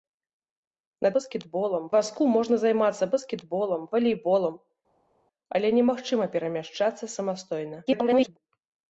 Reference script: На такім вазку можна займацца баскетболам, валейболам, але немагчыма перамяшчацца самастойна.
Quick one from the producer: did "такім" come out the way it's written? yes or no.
no